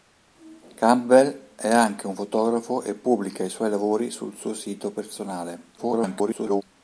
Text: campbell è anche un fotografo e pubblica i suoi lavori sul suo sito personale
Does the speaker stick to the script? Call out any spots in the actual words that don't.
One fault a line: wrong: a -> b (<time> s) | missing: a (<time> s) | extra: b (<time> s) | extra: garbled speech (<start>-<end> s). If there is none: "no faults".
extra: garbled speech (5.8-6.6 s)